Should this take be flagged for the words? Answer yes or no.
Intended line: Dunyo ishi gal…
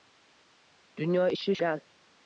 no